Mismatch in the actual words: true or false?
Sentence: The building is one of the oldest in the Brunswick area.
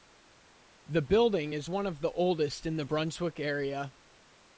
false